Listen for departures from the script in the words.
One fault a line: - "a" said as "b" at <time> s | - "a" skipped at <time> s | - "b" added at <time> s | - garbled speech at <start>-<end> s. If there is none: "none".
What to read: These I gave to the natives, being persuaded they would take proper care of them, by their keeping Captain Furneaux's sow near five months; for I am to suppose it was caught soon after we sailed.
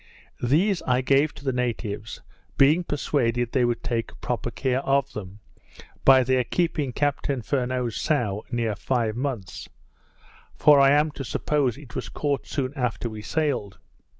none